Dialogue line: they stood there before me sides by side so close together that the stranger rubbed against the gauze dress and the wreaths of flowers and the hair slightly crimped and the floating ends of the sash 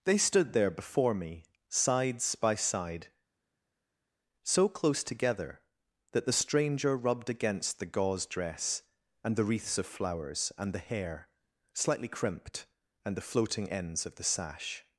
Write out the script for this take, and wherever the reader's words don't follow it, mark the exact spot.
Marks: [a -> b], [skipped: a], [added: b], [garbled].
they stood there before me sides by side so close together that the stranger rubbed against the gauze dress and the wreaths of flowers and the hair slightly crimped and the floating ends of the sash